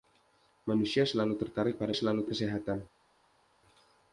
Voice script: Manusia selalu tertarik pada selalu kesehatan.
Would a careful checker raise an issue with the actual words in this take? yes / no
no